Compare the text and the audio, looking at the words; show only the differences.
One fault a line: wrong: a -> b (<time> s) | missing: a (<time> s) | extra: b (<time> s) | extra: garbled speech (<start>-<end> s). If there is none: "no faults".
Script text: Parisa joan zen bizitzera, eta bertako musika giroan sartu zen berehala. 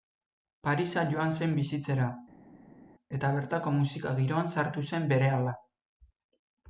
no faults